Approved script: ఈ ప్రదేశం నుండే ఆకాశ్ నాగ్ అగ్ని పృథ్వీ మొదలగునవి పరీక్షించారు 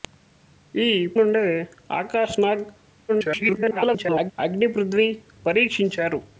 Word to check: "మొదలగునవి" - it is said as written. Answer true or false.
false